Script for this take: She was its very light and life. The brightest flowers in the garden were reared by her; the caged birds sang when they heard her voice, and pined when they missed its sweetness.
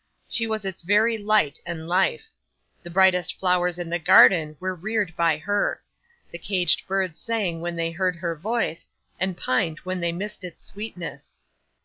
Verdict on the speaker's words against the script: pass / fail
pass